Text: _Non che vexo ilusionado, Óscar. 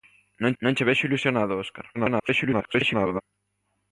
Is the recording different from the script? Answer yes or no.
yes